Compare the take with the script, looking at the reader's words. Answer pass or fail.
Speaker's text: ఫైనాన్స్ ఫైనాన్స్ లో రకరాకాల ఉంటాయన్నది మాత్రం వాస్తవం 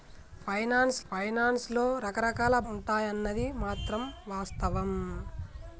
pass